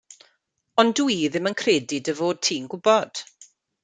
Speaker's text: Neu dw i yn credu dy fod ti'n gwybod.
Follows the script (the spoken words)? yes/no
no